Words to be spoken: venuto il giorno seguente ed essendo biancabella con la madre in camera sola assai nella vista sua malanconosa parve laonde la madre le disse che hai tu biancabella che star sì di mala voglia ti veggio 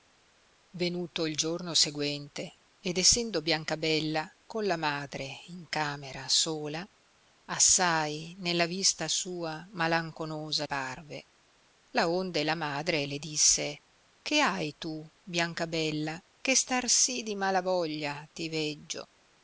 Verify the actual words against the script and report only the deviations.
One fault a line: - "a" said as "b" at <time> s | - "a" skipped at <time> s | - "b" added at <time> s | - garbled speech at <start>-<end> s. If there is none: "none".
none